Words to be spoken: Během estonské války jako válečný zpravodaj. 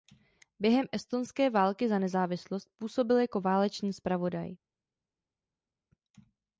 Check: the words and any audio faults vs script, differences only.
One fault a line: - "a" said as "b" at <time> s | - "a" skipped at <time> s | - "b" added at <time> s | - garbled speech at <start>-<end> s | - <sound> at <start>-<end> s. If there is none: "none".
- "za nezávislost působil" added at 1.9 s